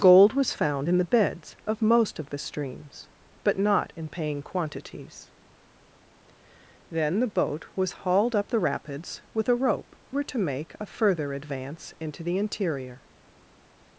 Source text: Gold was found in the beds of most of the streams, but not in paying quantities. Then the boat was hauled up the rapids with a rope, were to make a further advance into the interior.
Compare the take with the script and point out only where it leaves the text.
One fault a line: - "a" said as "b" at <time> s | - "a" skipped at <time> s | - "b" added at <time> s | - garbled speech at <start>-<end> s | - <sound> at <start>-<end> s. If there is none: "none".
none